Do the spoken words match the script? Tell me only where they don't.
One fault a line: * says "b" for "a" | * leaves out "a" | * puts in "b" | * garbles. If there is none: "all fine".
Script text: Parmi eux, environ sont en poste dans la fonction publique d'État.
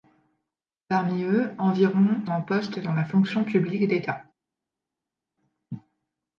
* leaves out "sont"